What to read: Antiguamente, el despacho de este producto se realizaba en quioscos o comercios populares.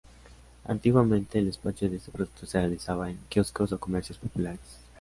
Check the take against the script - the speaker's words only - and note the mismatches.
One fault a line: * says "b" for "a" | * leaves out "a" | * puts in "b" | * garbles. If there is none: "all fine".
all fine